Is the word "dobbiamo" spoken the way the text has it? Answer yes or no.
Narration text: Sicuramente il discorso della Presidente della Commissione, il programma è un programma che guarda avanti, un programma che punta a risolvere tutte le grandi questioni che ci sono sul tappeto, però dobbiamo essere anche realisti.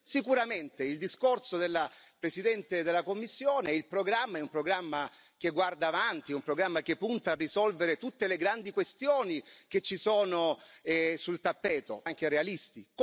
no